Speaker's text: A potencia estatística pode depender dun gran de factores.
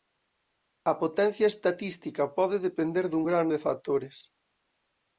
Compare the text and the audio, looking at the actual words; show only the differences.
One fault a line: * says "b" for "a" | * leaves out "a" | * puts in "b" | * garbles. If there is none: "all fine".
all fine